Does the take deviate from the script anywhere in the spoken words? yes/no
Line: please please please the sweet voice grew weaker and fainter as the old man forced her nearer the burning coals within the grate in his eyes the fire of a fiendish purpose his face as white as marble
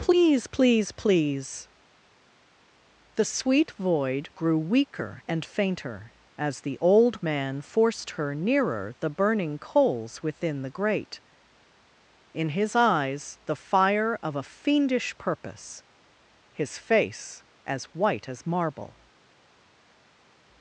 yes